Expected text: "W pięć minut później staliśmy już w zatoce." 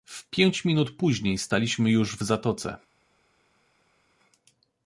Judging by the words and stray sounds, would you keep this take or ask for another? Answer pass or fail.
pass